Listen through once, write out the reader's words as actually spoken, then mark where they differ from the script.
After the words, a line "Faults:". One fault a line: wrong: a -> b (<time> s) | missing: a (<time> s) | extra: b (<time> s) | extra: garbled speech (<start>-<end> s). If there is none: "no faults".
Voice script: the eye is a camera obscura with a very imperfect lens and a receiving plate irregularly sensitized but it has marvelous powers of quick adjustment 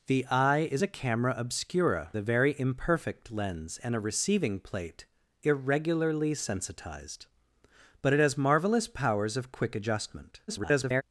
the eye is a camera obscura a very imperfect lens and a receiving plate irregularly sensitized but it has marvelous powers of quick adjustment [garbled]
Faults:
missing: with (2.1 s)
extra: garbled speech (10.5-11.0 s)